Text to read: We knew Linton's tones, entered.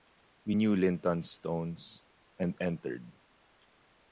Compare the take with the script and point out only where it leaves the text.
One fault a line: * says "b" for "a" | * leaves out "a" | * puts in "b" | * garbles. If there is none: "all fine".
* puts in "and"